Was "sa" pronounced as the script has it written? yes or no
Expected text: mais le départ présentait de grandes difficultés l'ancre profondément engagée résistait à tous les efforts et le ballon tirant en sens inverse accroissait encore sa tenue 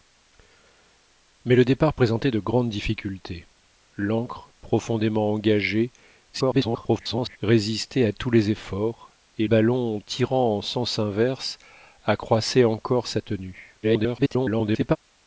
yes